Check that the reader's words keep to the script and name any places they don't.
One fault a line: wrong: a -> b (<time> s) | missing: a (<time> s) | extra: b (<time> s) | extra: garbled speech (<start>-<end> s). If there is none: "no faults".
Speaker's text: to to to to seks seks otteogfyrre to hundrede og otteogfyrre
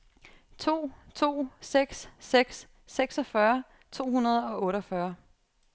missing: to to (1.5 s)
wrong: otteogfyrre -> seksogfyrre (2.9 s)